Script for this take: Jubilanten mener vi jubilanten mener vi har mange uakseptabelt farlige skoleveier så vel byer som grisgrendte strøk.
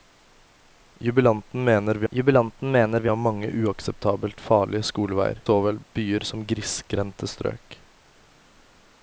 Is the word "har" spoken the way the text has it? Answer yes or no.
yes